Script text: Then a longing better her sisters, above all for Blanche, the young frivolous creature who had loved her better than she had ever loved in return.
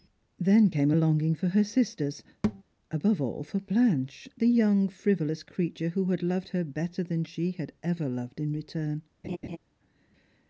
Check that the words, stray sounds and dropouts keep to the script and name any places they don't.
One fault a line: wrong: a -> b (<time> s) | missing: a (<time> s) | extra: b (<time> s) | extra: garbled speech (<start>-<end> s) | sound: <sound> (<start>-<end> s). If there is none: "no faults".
extra: came (0.7 s)
wrong: better -> for (1.3 s)
sound: thud (2.4-2.6 s)
sound: laugh (9.2-9.6 s)